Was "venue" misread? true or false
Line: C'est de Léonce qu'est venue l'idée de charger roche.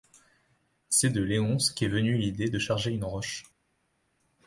false